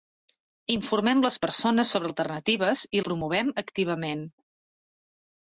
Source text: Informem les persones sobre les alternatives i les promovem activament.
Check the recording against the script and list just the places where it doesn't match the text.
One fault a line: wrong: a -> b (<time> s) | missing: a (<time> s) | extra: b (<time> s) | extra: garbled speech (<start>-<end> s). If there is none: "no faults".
missing: les (2.1 s)
missing: les (3.0 s)